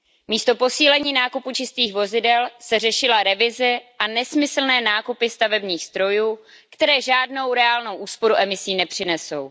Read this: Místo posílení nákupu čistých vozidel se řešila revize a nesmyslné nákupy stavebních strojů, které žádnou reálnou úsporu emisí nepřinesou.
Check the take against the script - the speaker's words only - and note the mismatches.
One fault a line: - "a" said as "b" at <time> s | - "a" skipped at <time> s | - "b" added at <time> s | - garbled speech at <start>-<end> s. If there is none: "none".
none